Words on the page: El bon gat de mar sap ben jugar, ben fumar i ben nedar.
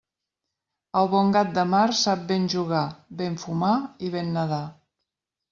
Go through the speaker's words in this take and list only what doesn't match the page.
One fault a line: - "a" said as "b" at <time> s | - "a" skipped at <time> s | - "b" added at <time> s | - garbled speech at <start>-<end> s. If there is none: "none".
none